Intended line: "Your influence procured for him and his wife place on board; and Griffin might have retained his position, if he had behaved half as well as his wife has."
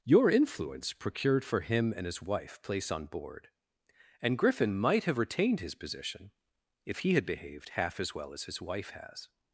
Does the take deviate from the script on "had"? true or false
false